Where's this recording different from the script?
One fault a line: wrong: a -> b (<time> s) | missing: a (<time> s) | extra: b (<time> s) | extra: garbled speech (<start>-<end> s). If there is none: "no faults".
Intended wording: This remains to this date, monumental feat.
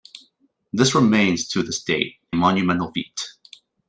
no faults